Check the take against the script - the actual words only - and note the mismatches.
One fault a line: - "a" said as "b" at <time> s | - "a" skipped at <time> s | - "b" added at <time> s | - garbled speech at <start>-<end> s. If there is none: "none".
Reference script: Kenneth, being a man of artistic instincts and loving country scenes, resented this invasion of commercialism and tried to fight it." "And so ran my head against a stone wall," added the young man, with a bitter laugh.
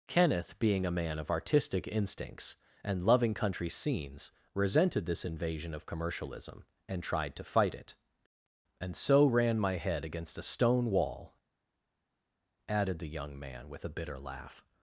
none